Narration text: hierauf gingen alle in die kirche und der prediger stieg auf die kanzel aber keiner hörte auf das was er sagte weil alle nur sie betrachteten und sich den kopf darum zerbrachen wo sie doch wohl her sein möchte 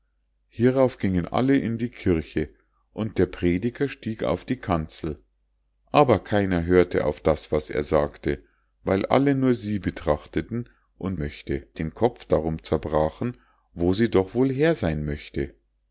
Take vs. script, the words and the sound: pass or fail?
fail